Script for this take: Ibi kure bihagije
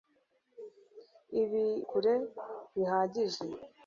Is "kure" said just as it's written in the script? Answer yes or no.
yes